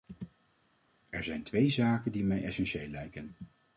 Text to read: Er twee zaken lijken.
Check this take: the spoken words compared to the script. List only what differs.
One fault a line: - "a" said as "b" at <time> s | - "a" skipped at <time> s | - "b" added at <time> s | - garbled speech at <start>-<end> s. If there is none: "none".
- "zijn" added at 1.2 s
- "die mij essentieel" added at 2.1 s